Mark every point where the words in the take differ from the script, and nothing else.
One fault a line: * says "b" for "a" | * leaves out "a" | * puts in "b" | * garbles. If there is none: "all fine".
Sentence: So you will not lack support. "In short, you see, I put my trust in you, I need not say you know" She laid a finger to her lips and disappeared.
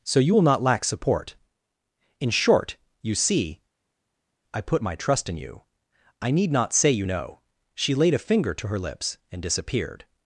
all fine